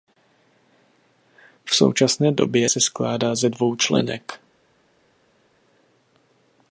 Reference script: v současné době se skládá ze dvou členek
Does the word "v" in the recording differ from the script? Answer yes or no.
no